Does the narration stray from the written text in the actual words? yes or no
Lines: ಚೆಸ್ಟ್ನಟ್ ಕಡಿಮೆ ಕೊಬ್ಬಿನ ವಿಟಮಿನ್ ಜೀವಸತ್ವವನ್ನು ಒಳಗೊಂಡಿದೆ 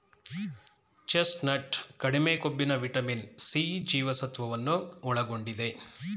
yes